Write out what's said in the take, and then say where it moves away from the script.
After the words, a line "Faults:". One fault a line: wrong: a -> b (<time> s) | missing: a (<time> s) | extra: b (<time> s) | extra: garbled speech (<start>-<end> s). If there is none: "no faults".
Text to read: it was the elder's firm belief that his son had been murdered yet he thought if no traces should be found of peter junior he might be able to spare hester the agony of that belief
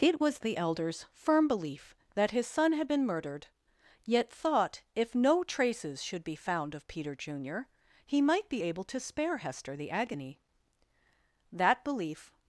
it was the elder's firm belief that his son had been murdered yet thought if no traces should be found of peter junior he might be able to spare hester the agony that belief
Faults:
missing: he (4.3 s)
missing: of (10.4 s)